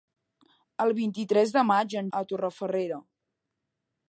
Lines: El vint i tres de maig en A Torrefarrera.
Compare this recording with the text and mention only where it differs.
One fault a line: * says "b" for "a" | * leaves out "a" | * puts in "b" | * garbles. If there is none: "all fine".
all fine